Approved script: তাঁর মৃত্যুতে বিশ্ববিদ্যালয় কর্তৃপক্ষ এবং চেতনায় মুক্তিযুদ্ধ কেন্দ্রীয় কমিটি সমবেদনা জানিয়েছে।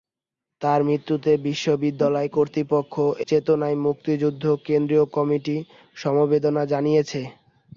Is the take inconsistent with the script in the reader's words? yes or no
yes